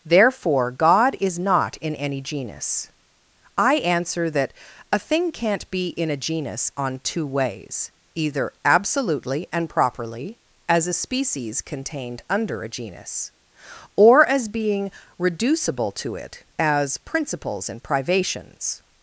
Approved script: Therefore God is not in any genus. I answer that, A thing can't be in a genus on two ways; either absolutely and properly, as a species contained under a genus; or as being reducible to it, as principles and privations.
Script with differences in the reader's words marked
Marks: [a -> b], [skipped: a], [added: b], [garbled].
Therefore God is not in any genus. I answer that, A thing can't be in a genus on two ways; either absolutely and properly, as a species contained under a genus; or as being reducible to it, as principles and privations.